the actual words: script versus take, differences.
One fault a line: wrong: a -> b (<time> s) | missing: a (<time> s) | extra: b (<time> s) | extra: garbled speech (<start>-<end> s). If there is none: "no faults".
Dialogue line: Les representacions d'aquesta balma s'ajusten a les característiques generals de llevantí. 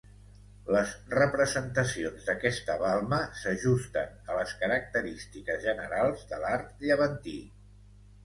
extra: l'art (6.5 s)